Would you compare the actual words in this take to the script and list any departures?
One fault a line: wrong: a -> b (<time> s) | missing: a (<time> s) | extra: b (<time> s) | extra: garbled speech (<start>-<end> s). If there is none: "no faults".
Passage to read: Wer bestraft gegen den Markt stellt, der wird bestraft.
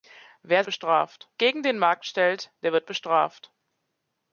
no faults